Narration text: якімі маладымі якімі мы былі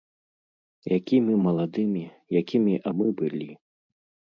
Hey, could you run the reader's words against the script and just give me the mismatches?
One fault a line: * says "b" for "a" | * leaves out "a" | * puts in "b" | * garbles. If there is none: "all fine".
all fine